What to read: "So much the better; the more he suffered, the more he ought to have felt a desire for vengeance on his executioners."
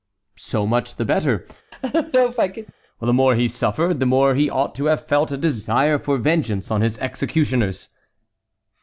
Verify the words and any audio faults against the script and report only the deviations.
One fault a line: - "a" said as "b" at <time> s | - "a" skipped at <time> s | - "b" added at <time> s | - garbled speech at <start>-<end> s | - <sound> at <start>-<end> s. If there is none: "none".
- laugh at 1.7-2.7 s